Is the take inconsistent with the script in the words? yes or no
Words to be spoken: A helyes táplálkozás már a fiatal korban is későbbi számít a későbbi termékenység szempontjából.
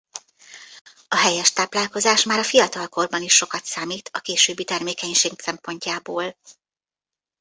yes